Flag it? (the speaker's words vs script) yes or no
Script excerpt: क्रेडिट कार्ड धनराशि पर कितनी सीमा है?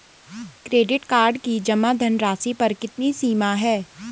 yes